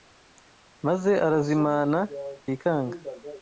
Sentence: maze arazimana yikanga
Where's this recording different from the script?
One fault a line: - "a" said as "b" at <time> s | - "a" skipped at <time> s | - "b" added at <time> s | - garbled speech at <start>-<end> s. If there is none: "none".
none